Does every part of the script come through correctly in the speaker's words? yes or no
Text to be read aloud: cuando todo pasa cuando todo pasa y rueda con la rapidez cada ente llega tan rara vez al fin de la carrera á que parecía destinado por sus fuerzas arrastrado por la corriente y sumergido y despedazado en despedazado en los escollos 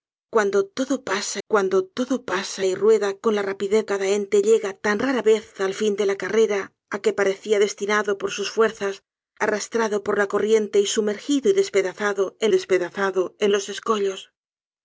yes